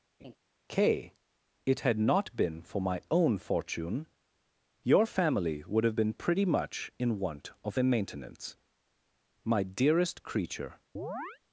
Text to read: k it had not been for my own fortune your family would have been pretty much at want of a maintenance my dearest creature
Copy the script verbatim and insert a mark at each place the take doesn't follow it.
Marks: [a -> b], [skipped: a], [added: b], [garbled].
k it had not been for my own fortune your family would have been pretty much [at -> in] want of a maintenance my dearest creature